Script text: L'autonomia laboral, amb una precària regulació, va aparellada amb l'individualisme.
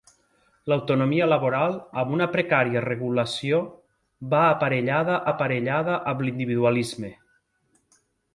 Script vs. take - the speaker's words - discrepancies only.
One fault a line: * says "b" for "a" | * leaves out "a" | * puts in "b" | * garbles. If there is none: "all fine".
* puts in "aparellada"